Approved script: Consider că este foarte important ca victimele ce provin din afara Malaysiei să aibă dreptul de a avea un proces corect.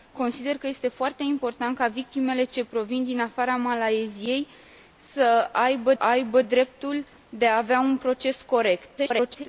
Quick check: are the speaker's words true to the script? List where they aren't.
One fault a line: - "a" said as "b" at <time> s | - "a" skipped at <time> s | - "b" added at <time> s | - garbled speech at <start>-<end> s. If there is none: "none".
- "aibă" added at 6.0 s
- garbled speech at 9.0-9.4 s